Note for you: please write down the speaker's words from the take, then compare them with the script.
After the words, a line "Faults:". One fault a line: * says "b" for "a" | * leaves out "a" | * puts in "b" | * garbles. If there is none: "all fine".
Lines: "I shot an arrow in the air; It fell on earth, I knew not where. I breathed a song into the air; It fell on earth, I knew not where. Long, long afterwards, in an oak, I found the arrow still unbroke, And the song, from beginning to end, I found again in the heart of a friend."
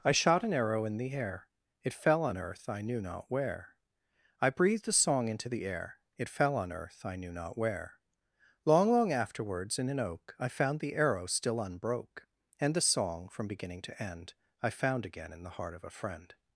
"I shot an arrow in the air; It fell on earth, I knew not where. I breathed a song into the air; It fell on earth, I knew not where. Long, long afterwards, in an oak, I found the arrow still unbroke, And the song, from beginning to end, I found again in the heart of a friend."
Faults:
all fine